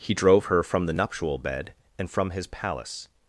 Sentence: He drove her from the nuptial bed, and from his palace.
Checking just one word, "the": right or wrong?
right